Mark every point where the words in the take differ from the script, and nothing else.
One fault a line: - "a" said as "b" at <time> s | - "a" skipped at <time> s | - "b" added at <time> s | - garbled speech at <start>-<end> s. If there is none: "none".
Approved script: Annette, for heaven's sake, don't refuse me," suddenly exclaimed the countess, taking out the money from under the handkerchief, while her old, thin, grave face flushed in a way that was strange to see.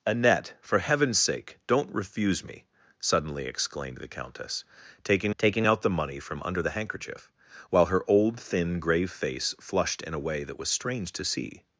- "taking" added at 5.4 s